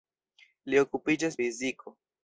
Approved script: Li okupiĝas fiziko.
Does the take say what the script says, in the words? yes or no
yes